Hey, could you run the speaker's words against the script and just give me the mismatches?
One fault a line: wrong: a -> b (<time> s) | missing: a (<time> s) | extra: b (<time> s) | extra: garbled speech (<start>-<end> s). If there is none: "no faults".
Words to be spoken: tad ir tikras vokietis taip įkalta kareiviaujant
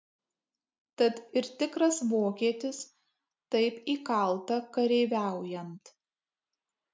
no faults